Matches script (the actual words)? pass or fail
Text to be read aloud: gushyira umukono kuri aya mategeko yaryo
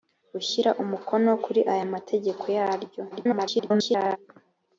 fail